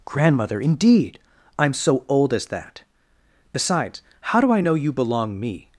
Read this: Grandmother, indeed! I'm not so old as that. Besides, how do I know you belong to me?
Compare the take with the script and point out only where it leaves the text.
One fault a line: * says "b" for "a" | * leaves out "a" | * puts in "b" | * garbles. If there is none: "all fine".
* leaves out "not"
* leaves out "to"